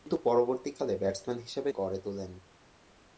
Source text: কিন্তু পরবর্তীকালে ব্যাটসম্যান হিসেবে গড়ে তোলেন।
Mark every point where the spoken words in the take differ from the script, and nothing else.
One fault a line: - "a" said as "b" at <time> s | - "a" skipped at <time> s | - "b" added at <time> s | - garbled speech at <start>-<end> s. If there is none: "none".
none